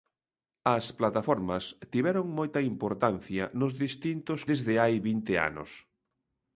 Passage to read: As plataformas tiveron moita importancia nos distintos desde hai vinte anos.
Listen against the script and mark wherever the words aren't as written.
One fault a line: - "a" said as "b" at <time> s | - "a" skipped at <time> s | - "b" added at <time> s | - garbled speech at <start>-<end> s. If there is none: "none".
none